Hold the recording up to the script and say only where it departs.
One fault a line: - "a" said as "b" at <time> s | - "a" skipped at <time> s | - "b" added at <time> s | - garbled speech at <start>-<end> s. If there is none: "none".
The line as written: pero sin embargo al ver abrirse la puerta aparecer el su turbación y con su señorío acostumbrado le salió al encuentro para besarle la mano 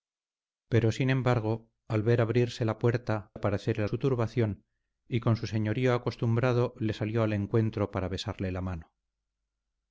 none